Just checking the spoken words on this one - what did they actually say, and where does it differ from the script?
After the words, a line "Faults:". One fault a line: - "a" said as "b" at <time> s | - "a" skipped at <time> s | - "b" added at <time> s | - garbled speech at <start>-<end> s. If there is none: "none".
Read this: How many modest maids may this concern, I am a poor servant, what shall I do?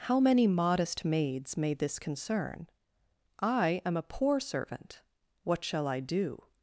How many modest maids may this concern, I am a poor servant, what shall I do?
Faults:
none